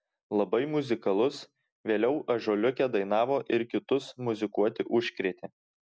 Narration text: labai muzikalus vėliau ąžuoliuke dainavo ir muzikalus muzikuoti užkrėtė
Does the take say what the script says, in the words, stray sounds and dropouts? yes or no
no